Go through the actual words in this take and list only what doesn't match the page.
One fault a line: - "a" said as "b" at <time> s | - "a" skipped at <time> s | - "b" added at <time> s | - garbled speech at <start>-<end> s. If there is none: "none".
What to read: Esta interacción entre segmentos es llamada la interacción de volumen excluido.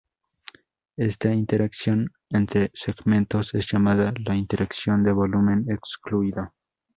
none